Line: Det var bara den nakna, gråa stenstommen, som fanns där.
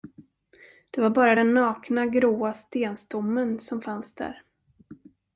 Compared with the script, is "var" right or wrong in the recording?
right